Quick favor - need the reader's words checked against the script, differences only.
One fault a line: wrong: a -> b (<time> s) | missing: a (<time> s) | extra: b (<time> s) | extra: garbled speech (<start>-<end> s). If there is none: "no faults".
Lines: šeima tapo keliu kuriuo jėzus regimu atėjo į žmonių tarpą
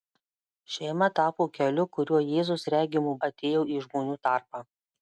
no faults